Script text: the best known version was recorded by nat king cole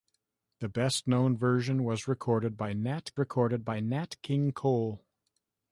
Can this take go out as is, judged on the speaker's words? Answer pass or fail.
fail